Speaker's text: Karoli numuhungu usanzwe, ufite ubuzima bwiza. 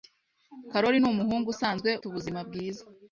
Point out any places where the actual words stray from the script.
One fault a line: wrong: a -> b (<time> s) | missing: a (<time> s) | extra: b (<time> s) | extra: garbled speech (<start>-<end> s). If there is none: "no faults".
missing: ufite (1.9 s)